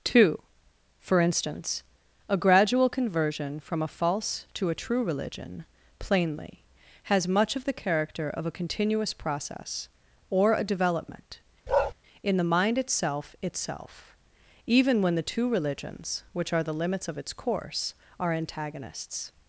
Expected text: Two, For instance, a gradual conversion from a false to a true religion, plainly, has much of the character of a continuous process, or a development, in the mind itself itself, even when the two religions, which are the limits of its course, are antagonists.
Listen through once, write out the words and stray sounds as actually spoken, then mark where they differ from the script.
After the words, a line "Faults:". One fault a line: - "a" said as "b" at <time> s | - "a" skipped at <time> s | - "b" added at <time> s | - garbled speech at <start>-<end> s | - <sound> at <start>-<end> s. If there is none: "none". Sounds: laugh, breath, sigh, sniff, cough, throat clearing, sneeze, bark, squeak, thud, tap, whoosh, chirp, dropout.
Two, For instance, a gradual conversion from a false to a true religion, plainly, has much of the character of a continuous process, or a development, in the mind itself itself, even when the two religions, which are the limits of its course, are antagonists.
Faults:
- bark at 11.7-11.9 s